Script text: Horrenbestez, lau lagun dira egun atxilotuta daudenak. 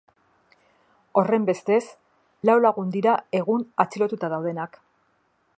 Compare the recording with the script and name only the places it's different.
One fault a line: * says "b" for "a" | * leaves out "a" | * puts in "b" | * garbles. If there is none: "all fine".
all fine